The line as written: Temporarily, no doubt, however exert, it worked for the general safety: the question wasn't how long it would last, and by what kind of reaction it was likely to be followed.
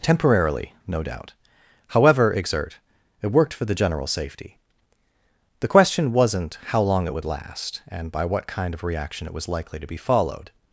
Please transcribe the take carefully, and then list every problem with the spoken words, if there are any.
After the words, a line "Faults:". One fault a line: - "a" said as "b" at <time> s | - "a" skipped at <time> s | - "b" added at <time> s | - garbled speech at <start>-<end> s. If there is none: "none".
Temporarily, no doubt, however exert, it worked for the general safety: the question wasn't how long it would last, and by what kind of reaction it was likely to be followed.
Faults:
none